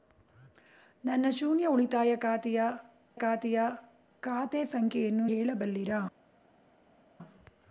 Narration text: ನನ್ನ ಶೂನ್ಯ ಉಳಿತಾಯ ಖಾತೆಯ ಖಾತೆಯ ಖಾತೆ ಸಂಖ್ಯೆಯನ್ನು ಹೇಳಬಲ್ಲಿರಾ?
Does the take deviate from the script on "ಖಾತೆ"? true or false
false